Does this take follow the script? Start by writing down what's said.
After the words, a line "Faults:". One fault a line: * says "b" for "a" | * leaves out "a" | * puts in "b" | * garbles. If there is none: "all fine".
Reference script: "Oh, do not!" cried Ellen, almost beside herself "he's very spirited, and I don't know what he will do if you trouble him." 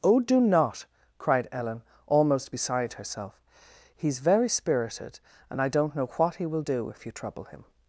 "Oh, do not!" cried Ellen, almost beside herself "he's very spirited, and I don't know what he will do if you trouble him."
Faults:
all fine